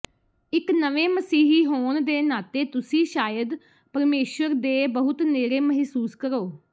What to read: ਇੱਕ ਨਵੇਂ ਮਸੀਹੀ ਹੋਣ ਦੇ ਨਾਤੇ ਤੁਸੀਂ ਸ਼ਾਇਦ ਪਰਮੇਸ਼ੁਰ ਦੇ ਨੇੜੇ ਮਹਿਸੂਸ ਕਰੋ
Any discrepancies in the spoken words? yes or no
yes